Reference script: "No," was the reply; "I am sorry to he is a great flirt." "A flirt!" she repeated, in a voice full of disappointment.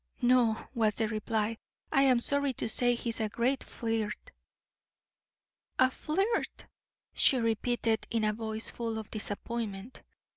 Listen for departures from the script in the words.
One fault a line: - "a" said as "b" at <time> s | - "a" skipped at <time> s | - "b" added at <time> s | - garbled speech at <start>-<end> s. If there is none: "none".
- "say" added at 2.7 s